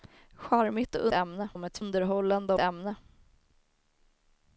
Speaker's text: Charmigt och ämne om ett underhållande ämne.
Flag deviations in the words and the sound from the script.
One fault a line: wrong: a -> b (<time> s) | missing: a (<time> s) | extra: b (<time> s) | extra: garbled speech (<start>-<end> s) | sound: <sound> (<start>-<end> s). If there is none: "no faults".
no faults